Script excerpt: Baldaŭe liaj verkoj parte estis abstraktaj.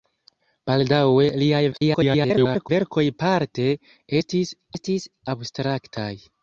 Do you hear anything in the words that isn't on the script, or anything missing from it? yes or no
yes